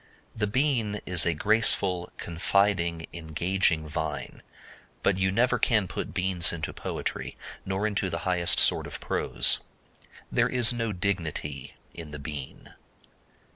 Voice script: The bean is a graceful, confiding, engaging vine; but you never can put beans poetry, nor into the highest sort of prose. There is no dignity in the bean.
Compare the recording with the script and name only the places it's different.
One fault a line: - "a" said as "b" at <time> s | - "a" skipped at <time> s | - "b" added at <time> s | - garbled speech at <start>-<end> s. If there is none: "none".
- "into" added at 6.5 s